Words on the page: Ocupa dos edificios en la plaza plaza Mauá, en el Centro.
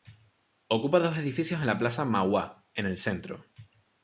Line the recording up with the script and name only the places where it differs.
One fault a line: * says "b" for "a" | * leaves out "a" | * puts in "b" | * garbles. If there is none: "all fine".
* leaves out "plaza"